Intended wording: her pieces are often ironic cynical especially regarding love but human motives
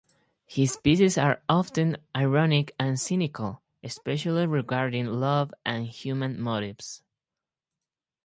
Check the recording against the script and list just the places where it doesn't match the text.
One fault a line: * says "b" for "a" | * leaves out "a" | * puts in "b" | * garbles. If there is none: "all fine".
* says "his" for "her"
* puts in "and"
* says "and" for "but"